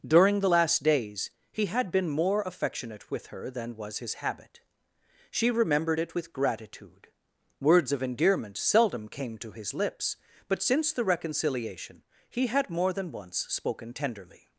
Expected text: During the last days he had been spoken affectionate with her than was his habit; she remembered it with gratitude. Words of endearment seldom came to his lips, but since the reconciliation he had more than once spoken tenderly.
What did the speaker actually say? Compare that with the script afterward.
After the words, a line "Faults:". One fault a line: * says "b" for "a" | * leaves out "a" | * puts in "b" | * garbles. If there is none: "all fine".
During the last days he had been more affectionate with her than was his habit; she remembered it with gratitude. Words of endearment seldom came to his lips, but since the reconciliation he had more than once spoken tenderly.
Faults:
* says "more" for "spoken"